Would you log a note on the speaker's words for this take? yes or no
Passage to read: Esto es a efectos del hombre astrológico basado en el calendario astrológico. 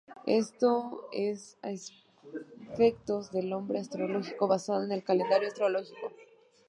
no